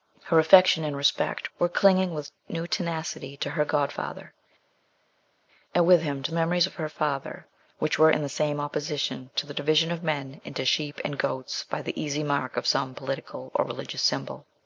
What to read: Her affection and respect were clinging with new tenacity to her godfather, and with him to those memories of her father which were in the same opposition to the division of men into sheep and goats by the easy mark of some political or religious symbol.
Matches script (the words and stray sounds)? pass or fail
fail